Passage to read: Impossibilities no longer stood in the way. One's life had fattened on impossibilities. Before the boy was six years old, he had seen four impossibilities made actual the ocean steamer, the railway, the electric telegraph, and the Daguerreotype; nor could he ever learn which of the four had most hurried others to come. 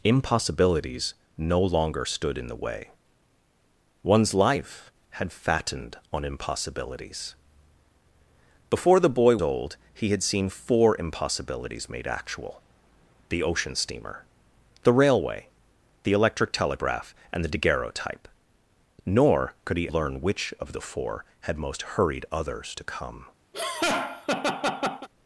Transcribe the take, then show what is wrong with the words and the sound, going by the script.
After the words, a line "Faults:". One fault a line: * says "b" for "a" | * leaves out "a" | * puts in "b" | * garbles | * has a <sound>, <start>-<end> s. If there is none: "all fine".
Impossibilities no longer stood in the way. One's life had fattened on impossibilities. Before the boy old, he had seen four impossibilities made actual the ocean steamer, the railway, the electric telegraph, and the Daguerreotype; nor could he learn which of the four had most hurried others to come.
Faults:
* leaves out "was six years"
* leaves out "ever"
* has a laugh, 23.5-25.1 s